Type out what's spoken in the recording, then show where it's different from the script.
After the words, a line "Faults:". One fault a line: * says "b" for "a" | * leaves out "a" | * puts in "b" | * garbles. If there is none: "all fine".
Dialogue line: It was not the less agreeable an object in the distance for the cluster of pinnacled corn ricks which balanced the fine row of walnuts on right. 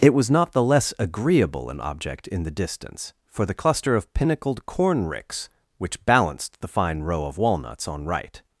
It was not the less agreeable an object in the distance for the cluster of pinnacled corn ricks which balanced the fine row of walnuts on right.
Faults:
all fine